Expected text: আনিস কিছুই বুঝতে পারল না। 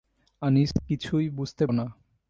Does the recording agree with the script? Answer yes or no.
no